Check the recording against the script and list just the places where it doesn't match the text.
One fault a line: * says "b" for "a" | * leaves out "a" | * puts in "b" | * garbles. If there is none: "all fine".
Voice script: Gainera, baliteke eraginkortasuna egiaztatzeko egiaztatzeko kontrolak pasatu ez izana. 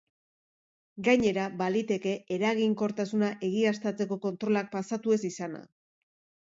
* leaves out "egiaztatzeko"